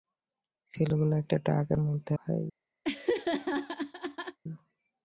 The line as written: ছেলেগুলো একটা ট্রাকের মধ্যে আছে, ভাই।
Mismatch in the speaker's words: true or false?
true